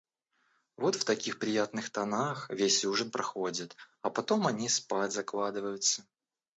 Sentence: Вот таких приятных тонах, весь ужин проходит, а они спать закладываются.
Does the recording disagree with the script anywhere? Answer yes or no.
yes